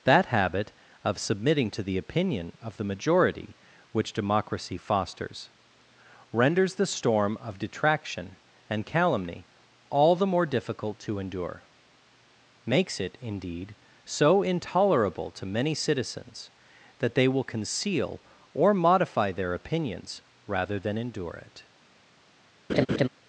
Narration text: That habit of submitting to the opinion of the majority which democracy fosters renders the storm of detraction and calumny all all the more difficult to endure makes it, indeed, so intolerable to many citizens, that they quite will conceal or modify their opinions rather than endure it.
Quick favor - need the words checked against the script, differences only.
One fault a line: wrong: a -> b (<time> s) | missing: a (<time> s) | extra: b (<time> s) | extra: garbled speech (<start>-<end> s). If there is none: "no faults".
missing: all (10.1 s)
missing: quite (17.3 s)